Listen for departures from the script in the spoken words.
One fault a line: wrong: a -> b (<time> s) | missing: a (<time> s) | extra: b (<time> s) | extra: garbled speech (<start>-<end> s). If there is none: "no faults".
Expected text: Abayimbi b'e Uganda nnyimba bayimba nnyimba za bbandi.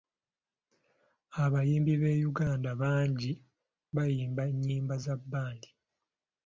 wrong: nnyimba -> bangi (2.8 s)